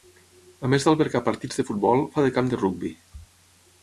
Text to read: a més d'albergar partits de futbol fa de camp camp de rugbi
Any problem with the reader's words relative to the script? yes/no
yes